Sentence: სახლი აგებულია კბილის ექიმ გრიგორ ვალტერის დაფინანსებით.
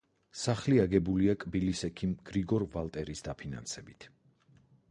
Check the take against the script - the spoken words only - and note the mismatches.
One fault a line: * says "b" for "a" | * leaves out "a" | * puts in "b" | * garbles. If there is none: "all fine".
all fine